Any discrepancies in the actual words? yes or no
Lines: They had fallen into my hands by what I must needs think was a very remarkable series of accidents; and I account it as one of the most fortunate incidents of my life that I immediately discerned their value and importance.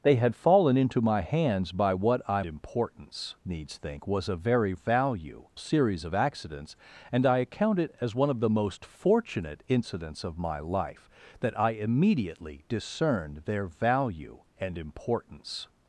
yes